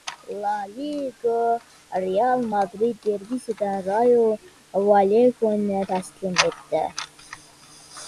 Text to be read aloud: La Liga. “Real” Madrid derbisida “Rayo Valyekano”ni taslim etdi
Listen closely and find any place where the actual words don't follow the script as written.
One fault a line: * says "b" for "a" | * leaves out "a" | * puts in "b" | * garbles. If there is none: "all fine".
all fine